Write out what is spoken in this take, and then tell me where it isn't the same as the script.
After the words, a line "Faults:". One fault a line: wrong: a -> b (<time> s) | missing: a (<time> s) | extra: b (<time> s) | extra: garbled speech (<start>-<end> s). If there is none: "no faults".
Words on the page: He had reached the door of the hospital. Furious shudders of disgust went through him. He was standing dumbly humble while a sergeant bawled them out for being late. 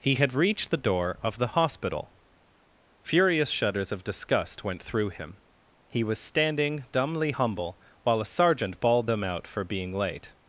He had reached the door of the hospital. Furious shudders of disgust went through him. He was standing dumbly humble while a sergeant bawled them out for being late.
Faults:
no faults